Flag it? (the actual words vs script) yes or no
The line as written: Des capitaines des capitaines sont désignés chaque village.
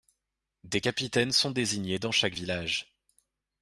yes